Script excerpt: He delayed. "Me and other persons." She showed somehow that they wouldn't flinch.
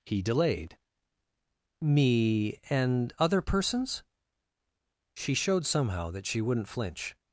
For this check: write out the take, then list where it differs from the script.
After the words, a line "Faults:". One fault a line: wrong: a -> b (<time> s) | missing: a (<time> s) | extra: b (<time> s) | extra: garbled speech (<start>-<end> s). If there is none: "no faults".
He delayed. "Me and other persons." She showed somehow that she wouldn't flinch.
Faults:
wrong: they -> she (6.3 s)